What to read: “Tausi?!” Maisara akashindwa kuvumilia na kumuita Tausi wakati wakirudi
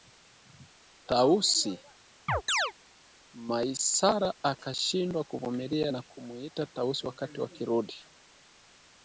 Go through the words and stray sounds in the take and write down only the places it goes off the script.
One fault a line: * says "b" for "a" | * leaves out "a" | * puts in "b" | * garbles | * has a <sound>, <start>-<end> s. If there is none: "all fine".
* has a chirp, 2.3-2.7 s